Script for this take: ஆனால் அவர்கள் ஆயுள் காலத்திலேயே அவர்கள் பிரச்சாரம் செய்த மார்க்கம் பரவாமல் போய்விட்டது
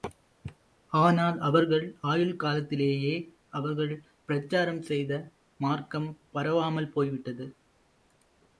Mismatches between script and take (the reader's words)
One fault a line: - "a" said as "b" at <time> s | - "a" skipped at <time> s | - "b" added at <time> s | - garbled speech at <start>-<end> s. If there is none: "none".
none